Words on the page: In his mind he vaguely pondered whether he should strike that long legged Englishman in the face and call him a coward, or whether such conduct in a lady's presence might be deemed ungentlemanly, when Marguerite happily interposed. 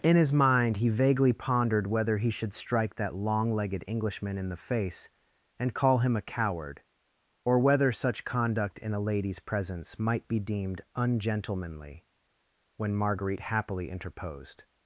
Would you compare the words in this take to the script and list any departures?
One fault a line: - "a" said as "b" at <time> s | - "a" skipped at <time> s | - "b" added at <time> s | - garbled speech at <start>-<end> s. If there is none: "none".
none